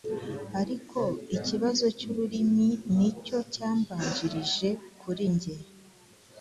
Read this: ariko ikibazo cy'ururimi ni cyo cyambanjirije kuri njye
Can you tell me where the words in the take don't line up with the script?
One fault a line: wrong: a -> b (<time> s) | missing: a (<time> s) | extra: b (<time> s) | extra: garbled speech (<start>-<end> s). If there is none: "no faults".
no faults